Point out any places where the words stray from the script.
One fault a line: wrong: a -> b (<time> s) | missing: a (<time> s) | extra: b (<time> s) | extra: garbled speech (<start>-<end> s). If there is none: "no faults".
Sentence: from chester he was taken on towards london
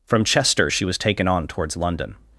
wrong: he -> she (0.7 s)